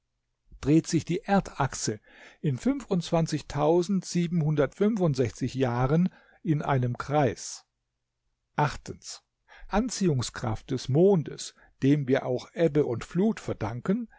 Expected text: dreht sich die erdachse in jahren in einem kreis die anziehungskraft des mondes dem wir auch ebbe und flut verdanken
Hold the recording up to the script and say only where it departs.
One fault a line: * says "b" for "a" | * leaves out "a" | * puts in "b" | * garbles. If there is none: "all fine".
* leaves out "die"